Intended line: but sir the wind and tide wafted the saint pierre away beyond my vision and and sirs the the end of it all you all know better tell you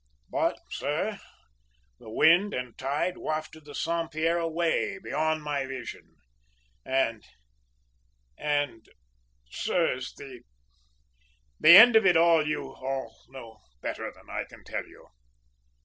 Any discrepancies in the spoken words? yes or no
yes